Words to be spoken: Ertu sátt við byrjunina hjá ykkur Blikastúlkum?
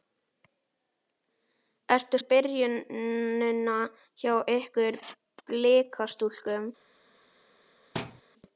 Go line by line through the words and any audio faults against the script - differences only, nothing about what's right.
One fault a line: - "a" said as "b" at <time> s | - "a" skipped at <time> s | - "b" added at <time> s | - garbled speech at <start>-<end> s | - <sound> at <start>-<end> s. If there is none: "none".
- "sátt" skipped at 2.2 s
- thud at 7.9-8.2 s